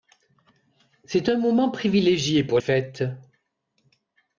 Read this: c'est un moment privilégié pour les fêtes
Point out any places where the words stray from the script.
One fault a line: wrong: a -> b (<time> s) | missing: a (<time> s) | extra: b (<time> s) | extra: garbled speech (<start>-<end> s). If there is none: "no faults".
missing: les (2.6 s)